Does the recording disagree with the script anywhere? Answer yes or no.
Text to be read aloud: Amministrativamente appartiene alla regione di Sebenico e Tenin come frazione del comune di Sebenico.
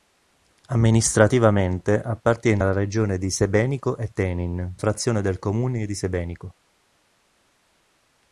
yes